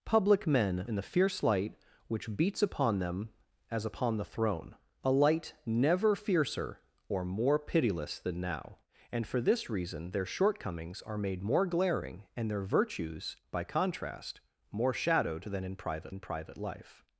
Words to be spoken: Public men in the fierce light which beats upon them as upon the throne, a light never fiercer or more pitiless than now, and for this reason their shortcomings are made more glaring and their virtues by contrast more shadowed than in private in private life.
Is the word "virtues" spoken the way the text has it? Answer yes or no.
yes